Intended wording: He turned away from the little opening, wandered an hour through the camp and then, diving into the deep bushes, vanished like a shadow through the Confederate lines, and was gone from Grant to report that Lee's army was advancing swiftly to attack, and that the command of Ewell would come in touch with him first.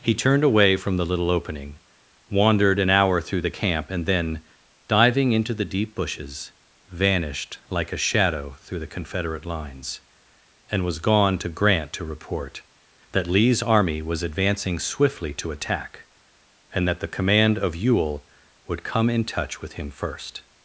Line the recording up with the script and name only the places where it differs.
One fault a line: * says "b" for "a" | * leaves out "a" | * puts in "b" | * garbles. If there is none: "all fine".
* says "to" for "from"